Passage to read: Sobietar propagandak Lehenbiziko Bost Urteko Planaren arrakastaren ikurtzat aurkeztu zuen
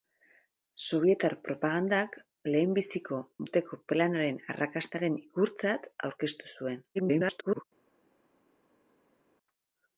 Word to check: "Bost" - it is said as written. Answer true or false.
false